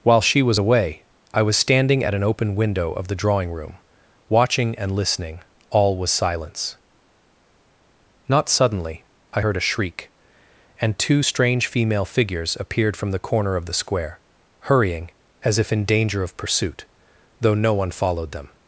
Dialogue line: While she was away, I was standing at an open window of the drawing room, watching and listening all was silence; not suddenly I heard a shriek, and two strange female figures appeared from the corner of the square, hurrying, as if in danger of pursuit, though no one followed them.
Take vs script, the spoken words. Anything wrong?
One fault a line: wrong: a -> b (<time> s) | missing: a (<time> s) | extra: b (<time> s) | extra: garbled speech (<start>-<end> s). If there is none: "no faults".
no faults